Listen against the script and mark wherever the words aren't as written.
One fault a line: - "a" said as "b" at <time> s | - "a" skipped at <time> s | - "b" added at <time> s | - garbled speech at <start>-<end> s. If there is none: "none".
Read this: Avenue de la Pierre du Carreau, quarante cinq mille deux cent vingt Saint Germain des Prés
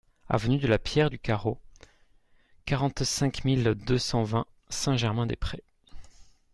none